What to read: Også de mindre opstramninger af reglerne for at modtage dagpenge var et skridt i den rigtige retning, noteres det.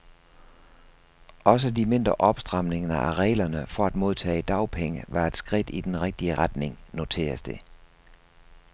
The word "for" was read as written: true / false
true